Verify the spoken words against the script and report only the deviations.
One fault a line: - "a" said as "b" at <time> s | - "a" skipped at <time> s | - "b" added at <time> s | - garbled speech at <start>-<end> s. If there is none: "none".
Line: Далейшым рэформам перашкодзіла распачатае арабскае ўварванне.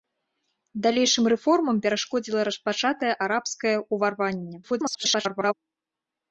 - garbled speech at 4.6-5.5 s